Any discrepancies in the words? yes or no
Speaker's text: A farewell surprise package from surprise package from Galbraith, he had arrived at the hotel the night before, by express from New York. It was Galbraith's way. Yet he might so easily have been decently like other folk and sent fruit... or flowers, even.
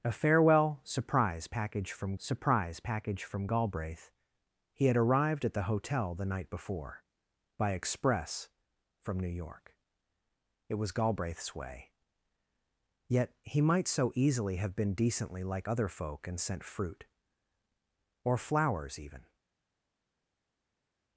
no